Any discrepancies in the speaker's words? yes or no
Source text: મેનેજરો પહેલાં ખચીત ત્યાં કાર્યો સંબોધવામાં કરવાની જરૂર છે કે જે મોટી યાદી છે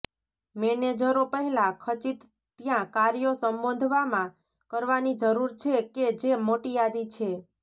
no